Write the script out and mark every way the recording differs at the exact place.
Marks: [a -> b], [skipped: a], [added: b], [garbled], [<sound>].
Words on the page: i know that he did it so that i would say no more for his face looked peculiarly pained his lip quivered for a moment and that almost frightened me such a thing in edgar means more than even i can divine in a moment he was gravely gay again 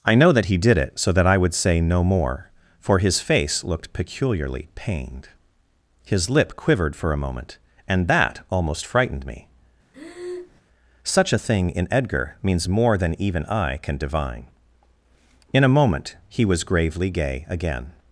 i know that he did it so that i would say no more for his face looked peculiarly pained his lip quivered for a moment and that almost frightened me [breath] such a thing in edgar means more than even i can divine in a moment he was gravely gay again